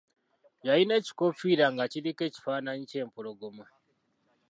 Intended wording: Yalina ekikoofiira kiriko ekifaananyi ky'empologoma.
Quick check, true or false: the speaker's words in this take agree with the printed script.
false